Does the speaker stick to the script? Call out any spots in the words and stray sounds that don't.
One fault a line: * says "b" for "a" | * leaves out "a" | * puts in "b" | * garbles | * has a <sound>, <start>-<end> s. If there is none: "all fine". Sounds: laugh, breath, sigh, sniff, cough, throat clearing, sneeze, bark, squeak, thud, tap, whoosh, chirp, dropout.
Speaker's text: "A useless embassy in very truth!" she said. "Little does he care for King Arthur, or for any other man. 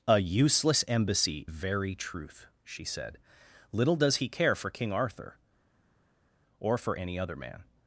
* leaves out "in"